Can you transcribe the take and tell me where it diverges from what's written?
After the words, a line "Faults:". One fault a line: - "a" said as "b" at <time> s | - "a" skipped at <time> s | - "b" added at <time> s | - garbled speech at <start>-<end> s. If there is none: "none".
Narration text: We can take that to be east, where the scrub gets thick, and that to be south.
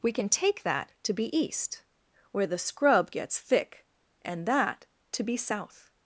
We can take that to be east, where the scrub gets thick, and that to be south.
Faults:
none